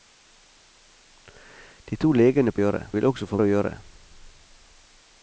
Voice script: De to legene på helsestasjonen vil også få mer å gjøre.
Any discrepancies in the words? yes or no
yes